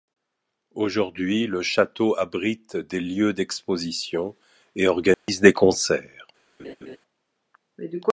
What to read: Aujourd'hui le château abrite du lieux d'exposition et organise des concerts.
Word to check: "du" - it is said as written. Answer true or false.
false